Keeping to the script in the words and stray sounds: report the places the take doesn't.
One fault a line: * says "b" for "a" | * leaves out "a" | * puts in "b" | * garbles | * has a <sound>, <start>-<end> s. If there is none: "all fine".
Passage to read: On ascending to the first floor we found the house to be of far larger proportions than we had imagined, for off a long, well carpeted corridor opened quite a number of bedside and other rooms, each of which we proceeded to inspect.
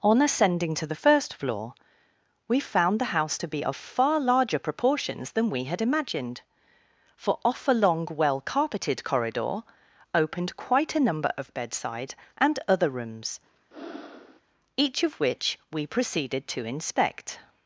* has a breath, 13.7-14.4 s